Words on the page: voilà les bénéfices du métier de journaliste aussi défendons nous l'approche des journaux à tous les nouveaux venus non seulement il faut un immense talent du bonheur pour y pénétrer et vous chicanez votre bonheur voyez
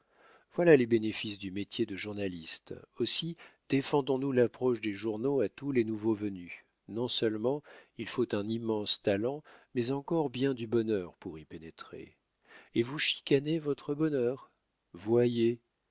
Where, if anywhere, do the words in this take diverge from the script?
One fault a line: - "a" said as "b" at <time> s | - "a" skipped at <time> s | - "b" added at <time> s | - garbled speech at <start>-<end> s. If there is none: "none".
- "mais encore bien" added at 9.8 s